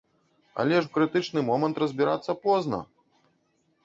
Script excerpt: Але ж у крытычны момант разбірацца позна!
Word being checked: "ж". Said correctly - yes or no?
yes